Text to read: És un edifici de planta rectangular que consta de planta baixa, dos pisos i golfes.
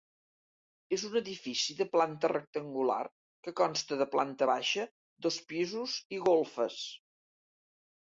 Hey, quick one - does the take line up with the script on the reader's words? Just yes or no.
yes